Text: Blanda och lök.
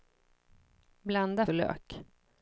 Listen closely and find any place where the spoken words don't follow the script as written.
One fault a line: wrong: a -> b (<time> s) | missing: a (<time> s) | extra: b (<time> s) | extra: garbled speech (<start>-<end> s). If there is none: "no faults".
no faults